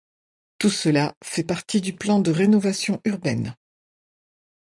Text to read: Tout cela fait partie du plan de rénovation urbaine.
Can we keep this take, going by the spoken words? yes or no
yes